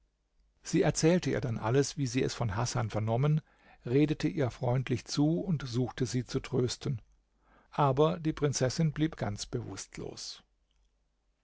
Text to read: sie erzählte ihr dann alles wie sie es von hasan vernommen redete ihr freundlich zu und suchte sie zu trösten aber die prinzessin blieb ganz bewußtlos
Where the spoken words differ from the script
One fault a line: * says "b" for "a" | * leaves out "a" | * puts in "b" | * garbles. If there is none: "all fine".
all fine